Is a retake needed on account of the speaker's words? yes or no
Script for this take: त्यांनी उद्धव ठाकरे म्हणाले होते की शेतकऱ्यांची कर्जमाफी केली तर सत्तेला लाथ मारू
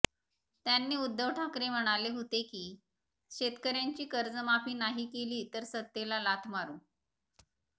yes